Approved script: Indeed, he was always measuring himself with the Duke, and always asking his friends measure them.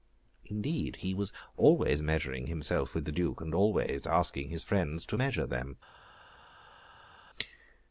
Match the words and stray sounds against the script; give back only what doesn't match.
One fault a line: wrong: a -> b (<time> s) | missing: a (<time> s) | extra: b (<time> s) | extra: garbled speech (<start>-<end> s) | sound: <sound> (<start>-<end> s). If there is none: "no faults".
extra: to (5.0 s)